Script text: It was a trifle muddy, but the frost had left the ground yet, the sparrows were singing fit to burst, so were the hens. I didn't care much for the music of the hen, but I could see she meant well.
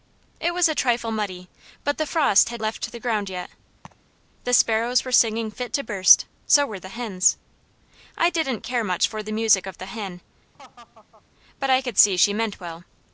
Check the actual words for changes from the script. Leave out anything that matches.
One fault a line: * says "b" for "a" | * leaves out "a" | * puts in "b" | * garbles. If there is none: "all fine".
all fine